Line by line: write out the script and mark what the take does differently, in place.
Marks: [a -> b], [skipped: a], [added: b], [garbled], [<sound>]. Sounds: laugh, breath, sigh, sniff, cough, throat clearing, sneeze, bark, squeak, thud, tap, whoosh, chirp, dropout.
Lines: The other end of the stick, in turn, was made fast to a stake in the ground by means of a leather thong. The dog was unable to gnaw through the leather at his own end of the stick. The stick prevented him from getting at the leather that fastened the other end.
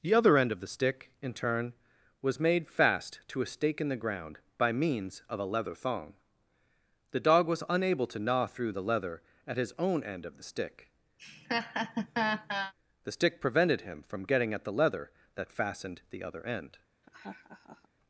The other end of the stick, in turn, was made fast to a stake in the ground by means of a leather thong. The dog was unable to gnaw through the leather at his own end of the stick. [laugh] The stick prevented him from getting at the leather that fastened the other end. [laugh]